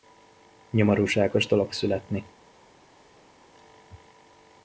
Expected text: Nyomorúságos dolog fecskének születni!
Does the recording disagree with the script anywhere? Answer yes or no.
yes